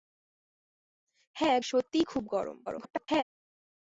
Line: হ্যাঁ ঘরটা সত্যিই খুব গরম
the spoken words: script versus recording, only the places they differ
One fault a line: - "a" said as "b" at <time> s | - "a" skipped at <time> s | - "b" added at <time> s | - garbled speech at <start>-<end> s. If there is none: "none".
- "ঘরটা" skipped at 1.6 s
- garbled speech at 2.7-3.2 s